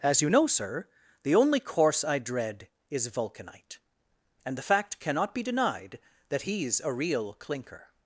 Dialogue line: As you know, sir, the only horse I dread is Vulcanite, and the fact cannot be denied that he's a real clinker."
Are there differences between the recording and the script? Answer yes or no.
yes